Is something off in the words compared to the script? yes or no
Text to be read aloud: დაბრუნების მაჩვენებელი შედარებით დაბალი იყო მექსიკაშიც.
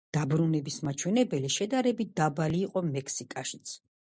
no